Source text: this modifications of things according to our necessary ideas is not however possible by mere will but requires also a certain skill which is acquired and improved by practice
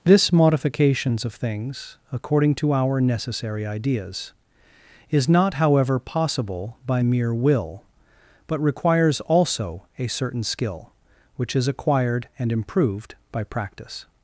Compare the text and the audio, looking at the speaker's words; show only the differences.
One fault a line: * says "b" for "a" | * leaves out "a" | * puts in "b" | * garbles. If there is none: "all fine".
all fine